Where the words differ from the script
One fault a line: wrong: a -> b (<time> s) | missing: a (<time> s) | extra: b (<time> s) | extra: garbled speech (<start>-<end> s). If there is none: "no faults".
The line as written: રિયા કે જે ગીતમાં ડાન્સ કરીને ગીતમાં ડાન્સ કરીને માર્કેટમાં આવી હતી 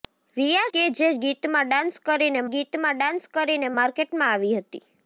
no faults